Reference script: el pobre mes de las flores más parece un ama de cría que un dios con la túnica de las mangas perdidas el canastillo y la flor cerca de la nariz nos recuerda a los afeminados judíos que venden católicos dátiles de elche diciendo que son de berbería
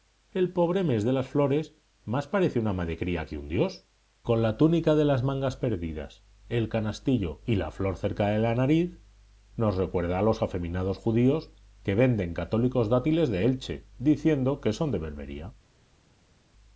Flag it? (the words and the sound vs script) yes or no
no